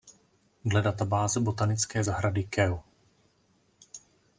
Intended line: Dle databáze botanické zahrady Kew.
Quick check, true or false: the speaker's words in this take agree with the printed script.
true